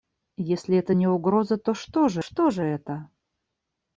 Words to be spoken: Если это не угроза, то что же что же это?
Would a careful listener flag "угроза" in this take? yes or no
no